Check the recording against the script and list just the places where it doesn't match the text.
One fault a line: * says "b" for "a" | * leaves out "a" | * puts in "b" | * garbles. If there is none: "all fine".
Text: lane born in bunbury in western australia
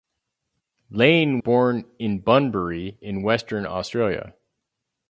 all fine